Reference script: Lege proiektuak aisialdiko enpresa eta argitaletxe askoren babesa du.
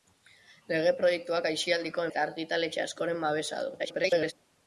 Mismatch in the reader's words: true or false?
true